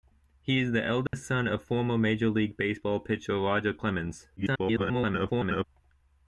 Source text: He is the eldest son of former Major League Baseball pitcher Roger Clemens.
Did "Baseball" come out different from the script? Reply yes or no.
no